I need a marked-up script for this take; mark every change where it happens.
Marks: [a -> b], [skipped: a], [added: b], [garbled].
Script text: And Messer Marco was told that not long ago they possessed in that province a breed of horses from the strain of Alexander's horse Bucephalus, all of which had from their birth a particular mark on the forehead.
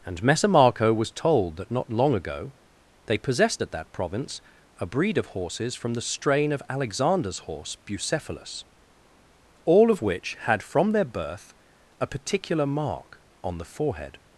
And Messer Marco was told that not long ago they possessed [in -> at] that province a breed of horses from the strain of Alexander's horse Bucephalus, all of which had from their birth a particular mark on the forehead.